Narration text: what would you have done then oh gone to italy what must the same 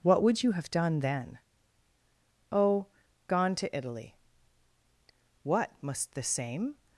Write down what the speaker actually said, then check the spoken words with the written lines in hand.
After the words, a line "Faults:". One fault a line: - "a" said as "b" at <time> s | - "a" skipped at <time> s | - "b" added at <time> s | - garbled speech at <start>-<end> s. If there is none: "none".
what would you have done then oh gone to italy what must the same
Faults:
none